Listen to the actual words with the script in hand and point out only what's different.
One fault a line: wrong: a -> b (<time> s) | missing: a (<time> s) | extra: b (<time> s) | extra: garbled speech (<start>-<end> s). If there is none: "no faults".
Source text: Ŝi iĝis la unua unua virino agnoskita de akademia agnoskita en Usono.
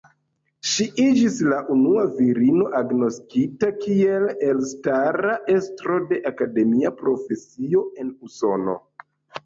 missing: unua (2.0 s)
extra: kiel elstara estro (3.9 s)
wrong: agnoskita -> profesio (7.1 s)